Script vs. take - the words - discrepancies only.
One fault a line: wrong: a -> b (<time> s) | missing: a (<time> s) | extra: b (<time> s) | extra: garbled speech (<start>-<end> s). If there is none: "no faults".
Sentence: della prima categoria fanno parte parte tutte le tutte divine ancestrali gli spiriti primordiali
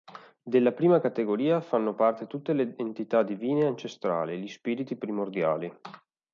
missing: parte (2.2 s)
wrong: tutte -> entità (2.8 s)